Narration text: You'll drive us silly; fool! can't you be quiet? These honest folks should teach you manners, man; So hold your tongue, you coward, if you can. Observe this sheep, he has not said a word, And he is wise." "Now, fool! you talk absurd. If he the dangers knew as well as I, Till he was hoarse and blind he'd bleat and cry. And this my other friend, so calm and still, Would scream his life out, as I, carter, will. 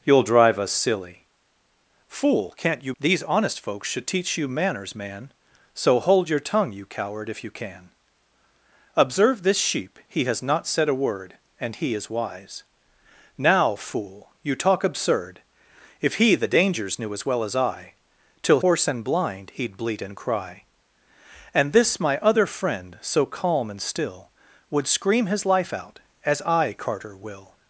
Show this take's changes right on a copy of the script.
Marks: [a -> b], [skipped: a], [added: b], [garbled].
You'll drive us silly; fool! can't you [skipped: be quiet?] These honest folks should teach you manners, man; So hold your tongue, you coward, if you can. Observe this sheep, he has not said a word, And he is wise." "Now, fool! you talk absurd. If he the dangers knew as well as I, Till [skipped: he was] hoarse and blind he'd bleat and cry. And this my other friend, so calm and still, Would scream his life out, as I, carter, will.